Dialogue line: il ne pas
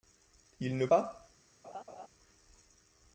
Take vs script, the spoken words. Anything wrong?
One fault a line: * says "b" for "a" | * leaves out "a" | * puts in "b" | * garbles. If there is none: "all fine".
all fine